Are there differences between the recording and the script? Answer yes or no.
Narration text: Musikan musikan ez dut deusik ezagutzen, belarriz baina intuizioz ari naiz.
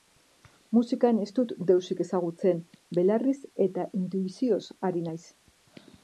yes